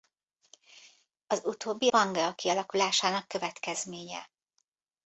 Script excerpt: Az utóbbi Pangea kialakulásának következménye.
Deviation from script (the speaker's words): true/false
false